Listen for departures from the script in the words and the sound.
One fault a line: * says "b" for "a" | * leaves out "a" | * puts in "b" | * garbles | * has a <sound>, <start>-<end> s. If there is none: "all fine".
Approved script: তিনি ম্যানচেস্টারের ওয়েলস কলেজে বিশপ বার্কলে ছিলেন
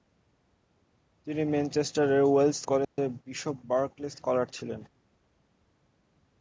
* has a dropout, 2.8-3.0 s
* puts in "স্কলার"